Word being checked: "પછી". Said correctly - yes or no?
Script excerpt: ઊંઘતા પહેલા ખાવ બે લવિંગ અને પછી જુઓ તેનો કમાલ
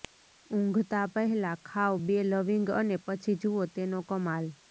yes